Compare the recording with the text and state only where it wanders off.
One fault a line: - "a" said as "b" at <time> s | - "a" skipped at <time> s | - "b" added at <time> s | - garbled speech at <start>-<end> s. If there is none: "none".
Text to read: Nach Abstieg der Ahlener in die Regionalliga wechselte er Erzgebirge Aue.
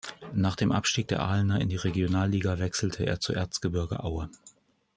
- "dem" added at 0.6 s
- "zu" added at 3.2 s